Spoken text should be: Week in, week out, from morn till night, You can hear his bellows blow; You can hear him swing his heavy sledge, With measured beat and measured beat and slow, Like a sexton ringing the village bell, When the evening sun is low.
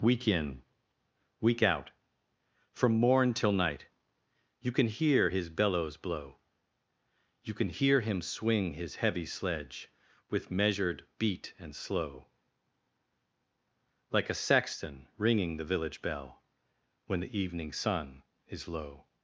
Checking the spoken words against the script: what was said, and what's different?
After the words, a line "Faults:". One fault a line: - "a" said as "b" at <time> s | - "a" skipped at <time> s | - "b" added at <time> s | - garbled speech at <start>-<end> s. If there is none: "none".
Week in, week out, from morn till night, You can hear his bellows blow; You can hear him swing his heavy sledge, With measured beat and slow, Like a sexton ringing the village bell, When the evening sun is low.
Faults:
- "measured beat and" skipped at 11.8 s